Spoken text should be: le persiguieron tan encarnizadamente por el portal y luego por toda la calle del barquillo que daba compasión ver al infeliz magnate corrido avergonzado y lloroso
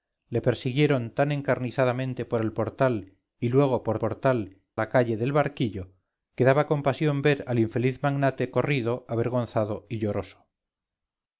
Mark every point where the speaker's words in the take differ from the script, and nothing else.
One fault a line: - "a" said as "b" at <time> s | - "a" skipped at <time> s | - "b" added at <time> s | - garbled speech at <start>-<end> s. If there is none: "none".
- "toda" said as "portal" at 4.0 s